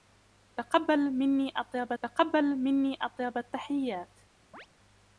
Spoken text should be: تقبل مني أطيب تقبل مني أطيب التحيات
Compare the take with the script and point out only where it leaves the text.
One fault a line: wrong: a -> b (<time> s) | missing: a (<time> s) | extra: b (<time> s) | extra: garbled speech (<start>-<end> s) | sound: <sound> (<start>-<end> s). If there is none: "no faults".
sound: chirp (4.5-4.7 s)